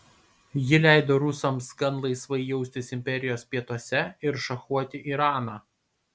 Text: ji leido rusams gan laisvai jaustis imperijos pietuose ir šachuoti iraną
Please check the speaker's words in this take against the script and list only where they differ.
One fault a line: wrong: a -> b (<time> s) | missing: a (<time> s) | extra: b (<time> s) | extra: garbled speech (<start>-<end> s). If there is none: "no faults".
no faults